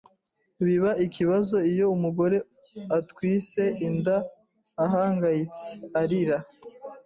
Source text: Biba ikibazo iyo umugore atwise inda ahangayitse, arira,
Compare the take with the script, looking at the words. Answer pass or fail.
pass